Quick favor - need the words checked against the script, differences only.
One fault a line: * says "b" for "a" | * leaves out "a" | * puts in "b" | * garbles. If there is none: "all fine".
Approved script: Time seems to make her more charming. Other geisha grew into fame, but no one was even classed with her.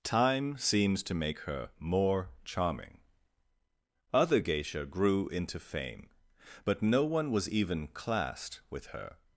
all fine